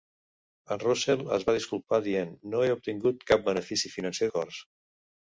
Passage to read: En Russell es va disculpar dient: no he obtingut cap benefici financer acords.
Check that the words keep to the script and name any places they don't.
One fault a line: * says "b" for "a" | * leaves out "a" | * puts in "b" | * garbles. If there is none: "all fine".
all fine